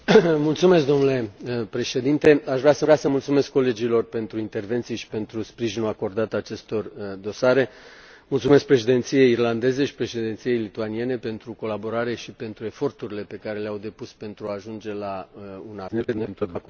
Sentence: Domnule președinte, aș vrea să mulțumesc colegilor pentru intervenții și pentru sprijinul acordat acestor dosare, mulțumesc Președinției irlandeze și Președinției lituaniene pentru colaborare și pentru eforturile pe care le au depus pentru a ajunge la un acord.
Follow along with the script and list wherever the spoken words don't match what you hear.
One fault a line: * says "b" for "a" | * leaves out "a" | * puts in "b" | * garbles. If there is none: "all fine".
* puts in "vrea să"
* garbles